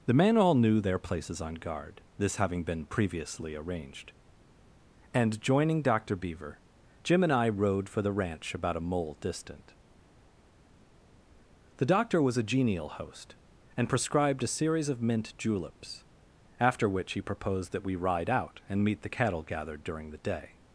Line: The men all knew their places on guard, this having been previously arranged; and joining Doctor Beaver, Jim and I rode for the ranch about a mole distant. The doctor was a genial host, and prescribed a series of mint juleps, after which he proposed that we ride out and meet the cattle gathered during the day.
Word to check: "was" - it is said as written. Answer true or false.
true